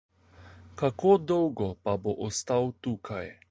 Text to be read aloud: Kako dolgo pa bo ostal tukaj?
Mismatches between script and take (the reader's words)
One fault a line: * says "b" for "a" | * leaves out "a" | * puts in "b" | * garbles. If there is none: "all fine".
all fine